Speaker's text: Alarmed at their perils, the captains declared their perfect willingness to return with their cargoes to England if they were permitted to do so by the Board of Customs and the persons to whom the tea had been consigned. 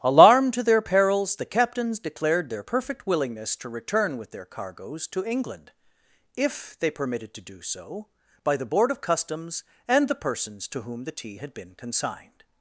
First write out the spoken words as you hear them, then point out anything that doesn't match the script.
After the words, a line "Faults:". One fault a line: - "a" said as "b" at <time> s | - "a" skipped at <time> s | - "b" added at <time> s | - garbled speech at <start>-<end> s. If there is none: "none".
Alarmed to their perils, the captains declared their perfect willingness to return with their cargoes to England if they permitted to do so by the Board of Customs and the persons to whom the tea had been consigned.
Faults:
- "at" said as "to" at 0.6 s
- "were" skipped at 6.9 s